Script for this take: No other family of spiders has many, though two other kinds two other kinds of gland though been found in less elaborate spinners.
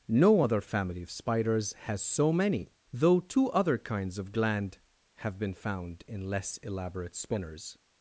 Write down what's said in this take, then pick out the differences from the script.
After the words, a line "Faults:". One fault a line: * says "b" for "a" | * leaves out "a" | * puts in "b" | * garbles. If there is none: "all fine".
No other family of spiders has so many, though two other kinds of gland have been found in less elaborate spinners.
Faults:
* puts in "so"
* leaves out "two other kinds"
* says "have" for "though"